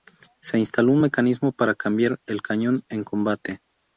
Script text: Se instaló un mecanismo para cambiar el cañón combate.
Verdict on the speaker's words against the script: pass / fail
fail